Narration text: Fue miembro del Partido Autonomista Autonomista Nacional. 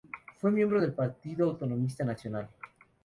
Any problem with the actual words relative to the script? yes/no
yes